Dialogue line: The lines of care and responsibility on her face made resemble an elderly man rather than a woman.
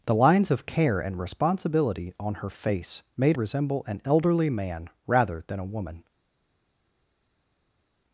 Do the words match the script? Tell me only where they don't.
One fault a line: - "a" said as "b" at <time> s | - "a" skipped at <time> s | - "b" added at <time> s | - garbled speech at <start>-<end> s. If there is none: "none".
none